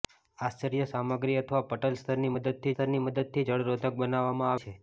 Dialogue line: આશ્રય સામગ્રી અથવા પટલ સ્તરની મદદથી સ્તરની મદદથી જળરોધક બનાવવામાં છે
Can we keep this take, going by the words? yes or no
yes